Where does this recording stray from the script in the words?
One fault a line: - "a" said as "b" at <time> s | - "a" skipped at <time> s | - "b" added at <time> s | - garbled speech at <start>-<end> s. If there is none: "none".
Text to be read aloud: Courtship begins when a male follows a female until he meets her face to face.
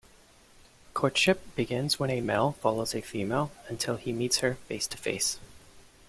none